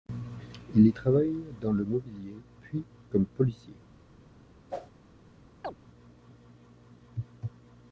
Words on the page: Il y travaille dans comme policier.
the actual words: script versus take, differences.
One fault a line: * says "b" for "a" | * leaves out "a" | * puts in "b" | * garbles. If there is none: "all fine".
* puts in "le mobilier puis"